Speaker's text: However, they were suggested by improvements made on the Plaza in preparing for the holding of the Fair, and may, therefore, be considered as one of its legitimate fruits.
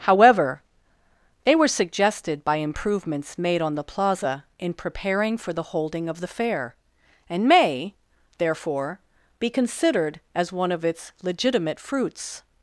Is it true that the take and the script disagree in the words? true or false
false